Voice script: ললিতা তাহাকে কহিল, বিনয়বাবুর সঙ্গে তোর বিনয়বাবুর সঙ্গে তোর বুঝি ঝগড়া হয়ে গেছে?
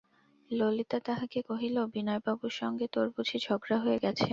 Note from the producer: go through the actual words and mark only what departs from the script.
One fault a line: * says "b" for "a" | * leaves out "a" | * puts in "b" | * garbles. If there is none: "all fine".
* leaves out "বিনয়বাবুর সঙ্গে তোর"